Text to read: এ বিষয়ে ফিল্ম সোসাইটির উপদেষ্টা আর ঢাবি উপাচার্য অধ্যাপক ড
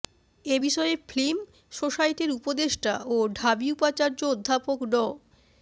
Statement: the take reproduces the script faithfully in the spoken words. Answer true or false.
false